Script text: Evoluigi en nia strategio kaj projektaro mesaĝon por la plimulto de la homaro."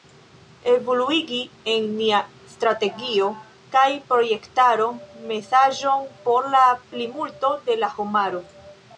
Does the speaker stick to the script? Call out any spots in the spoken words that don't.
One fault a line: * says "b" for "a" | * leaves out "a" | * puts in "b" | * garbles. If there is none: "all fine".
all fine